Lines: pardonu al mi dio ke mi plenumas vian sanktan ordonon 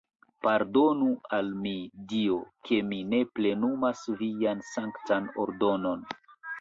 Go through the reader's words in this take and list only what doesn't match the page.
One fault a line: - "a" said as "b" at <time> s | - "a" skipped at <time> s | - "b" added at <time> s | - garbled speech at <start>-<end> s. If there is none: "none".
- "ne" added at 3.1 s